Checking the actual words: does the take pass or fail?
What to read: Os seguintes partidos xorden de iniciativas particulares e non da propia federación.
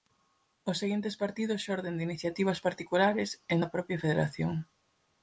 fail